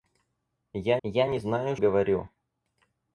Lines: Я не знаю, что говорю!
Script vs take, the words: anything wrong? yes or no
yes